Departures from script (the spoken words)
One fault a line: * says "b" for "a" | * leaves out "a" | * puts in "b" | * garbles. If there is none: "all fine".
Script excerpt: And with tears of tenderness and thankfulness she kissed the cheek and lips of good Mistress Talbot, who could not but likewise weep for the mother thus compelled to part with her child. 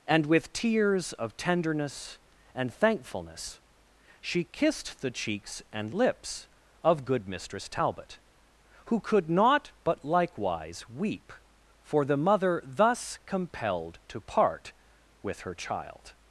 * says "cheeks" for "cheek"